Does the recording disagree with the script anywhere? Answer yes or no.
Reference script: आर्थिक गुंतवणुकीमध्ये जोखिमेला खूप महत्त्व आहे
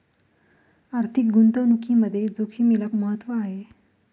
yes